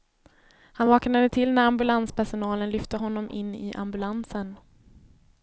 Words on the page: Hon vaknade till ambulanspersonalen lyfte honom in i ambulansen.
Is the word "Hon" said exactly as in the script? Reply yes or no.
no